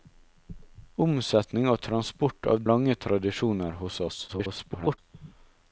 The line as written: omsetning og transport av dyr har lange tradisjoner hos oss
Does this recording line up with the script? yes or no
no